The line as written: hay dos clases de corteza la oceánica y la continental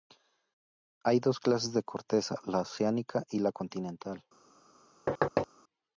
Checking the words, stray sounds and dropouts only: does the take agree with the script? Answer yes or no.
no